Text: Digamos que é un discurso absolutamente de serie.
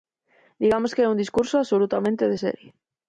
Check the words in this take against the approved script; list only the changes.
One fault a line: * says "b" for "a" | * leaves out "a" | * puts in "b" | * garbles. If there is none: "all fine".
all fine